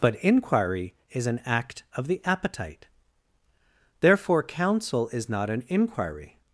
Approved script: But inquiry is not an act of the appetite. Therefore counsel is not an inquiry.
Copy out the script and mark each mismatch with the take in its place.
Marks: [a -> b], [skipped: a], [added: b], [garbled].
But inquiry is [skipped: not] an act of the appetite. Therefore counsel is not an inquiry.